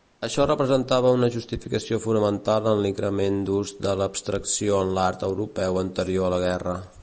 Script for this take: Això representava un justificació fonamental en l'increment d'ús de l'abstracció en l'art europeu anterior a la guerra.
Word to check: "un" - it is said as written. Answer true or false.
false